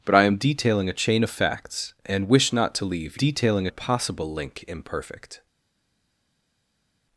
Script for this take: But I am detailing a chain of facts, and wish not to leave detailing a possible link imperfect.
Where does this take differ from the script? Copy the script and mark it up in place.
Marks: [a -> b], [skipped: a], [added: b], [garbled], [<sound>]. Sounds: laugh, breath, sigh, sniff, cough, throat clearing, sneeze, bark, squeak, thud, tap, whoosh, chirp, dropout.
But I am detailing a chain of facts, and wish not to leave detailing a possible link imperfect.